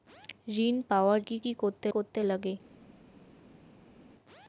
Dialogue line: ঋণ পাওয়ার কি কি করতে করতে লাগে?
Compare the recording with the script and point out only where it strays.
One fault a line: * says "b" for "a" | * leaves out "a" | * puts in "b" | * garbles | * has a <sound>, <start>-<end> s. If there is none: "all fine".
all fine